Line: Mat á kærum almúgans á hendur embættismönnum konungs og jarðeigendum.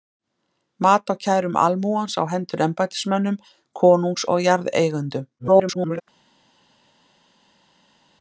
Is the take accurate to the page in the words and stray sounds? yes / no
no